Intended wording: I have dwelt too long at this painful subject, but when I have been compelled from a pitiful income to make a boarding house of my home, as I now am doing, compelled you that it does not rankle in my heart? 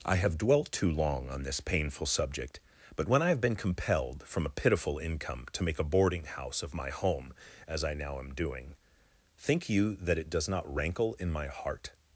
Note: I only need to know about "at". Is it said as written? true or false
false